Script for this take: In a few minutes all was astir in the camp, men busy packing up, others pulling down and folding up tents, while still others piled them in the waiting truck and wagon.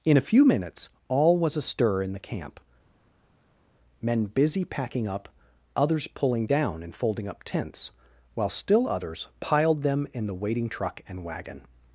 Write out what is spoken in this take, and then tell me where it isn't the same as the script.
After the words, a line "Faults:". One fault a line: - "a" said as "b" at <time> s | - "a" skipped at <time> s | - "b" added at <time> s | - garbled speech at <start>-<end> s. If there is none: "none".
In a few minutes all was astir in the camp, men busy packing up, others pulling down and folding up tents, while still others piled them in the waiting truck and wagon.
Faults:
none